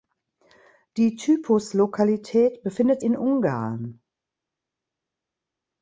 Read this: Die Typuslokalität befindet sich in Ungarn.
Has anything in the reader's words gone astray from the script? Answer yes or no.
yes